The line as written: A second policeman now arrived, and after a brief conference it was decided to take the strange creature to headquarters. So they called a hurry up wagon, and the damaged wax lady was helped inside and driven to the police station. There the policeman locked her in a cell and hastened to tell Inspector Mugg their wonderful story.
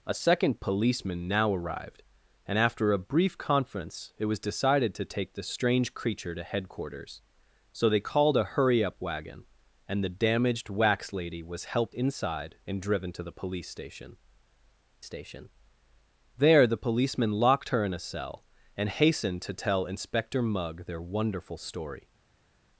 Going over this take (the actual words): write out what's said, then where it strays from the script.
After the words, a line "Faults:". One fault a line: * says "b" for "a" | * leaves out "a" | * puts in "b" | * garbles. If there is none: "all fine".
A second policeman now arrived, and after a brief conference it was decided to take the strange creature to headquarters. So they called a hurry up wagon, and the damaged wax lady was helped inside and driven to the police station station. There the policeman locked her in a cell and hastened to tell Inspector Mugg their wonderful story.
Faults:
* puts in "station"